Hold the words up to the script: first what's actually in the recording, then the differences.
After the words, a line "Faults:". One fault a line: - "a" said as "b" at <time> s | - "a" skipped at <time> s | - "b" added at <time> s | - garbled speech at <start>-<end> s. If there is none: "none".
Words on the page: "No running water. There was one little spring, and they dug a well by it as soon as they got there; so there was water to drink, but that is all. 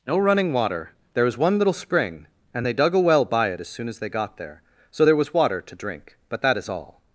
"No running water. There was one little spring, and they dug a well by it as soon as they got there; so there was water to drink, but that is all.
Faults:
none